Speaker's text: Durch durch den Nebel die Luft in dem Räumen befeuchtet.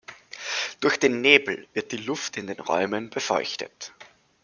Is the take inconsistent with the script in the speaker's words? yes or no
yes